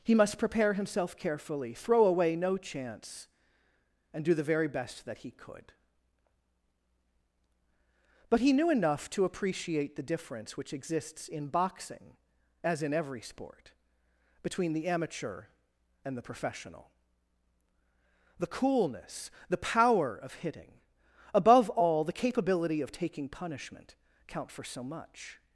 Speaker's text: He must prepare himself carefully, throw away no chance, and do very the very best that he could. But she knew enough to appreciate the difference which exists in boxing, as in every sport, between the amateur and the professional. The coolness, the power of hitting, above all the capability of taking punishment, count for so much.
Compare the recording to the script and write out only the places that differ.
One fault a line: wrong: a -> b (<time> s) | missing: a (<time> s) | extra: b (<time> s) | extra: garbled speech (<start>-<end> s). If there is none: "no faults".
missing: very (4.3 s)
wrong: she -> he (8.4 s)